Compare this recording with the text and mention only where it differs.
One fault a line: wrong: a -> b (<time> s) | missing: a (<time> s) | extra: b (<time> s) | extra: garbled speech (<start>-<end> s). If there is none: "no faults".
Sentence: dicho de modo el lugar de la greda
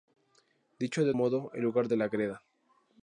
no faults